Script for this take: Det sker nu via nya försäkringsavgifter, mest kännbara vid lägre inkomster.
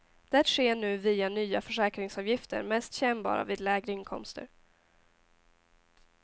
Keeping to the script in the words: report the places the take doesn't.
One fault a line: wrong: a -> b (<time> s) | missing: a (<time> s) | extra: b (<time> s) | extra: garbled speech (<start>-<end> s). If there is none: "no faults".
no faults